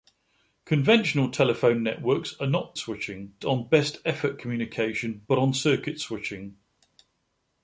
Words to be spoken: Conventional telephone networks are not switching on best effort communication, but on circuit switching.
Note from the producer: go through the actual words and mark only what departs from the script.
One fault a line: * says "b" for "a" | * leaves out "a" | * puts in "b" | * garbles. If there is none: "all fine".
all fine